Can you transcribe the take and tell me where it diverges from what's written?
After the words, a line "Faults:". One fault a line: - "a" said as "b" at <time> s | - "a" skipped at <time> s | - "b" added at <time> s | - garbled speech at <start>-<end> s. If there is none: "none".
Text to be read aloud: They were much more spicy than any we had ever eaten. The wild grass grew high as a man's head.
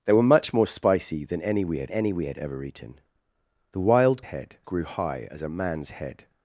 They were much more spicy than any we had any we had ever eaten. The wild head grew high as a man's head.
Faults:
- "any we had" added at 1.9 s
- "grass" said as "head" at 4.2 s